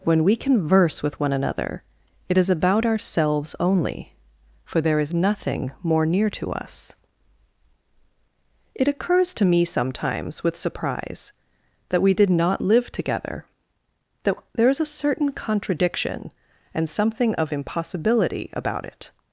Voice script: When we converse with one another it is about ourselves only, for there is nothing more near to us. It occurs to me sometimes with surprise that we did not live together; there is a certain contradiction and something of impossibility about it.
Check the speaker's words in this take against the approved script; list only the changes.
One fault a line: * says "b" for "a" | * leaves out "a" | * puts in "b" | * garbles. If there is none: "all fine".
* puts in "that"